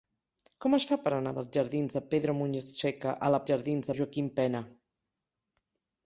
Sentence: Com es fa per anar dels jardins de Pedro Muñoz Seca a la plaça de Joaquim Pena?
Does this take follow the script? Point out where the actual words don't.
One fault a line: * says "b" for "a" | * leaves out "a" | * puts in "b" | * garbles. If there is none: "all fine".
* says "jardins" for "plaça"